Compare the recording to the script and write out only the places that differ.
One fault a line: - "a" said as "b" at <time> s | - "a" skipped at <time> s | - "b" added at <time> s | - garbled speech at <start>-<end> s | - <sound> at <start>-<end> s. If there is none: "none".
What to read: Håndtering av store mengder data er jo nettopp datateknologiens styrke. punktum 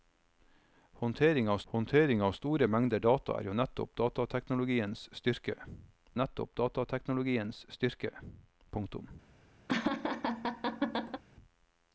- "håndtering av" added at 1.7 s
- "nettopp datateknologiens styrke" added at 6.2 s
- laugh at 9.7-11.2 s